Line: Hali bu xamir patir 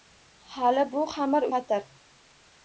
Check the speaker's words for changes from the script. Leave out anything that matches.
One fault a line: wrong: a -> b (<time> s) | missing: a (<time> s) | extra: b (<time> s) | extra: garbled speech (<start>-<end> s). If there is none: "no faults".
no faults